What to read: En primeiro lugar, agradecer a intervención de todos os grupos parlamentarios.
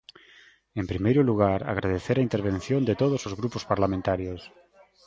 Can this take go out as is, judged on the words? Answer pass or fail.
pass